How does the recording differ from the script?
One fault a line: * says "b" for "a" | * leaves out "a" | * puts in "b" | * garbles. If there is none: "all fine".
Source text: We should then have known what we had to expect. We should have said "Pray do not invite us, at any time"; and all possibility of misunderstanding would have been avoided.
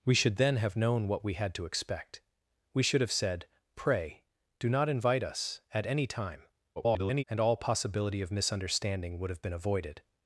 * garbles